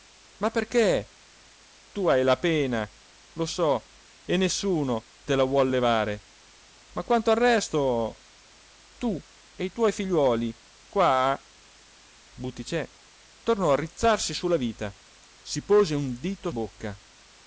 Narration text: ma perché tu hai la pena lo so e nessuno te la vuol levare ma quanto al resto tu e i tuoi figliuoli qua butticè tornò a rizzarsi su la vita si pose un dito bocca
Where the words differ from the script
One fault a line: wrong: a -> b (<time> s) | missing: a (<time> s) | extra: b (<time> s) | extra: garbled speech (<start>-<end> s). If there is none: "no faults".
no faults